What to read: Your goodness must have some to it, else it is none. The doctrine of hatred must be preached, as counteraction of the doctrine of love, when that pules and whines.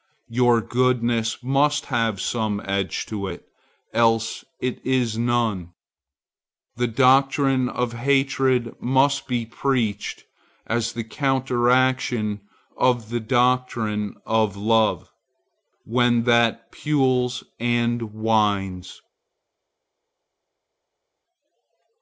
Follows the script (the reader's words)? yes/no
no